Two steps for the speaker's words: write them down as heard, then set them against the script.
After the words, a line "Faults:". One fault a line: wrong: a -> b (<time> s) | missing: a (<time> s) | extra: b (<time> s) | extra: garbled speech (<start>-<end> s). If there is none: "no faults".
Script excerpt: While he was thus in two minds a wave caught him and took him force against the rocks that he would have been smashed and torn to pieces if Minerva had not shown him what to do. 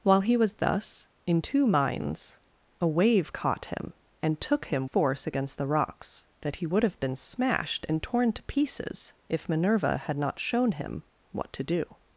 While he was thus in two minds a wave caught him and took him force against the rocks that he would have been smashed and torn to pieces if Minerva had not shown him what to do.
Faults:
no faults